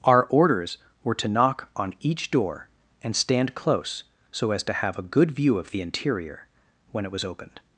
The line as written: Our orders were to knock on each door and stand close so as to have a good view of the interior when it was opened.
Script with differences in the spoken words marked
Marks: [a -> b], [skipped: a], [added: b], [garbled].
Our orders were to knock on each door and stand close so as to have a good view of the interior when it was opened.